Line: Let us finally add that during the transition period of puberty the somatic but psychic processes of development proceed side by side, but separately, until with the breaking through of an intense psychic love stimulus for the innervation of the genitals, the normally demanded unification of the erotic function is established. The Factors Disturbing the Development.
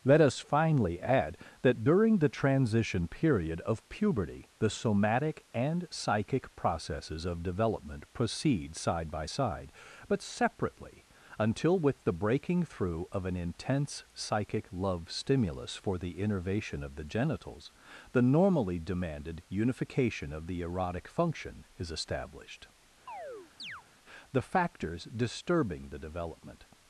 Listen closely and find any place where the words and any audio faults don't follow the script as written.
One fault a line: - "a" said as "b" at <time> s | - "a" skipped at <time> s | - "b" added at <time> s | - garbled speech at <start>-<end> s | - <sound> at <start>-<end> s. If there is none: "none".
- "but" said as "and" at 5.5 s
- chirp at 23.1-23.8 s